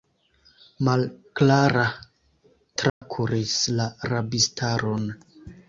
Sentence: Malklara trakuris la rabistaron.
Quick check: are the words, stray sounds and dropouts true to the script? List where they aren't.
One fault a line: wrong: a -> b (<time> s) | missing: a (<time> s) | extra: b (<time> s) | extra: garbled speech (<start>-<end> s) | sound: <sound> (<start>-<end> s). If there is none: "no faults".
sound: dropout (2.9-3.0 s)